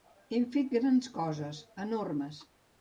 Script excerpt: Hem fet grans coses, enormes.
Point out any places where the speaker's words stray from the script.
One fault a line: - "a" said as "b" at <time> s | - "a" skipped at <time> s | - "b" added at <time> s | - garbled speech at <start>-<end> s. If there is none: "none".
none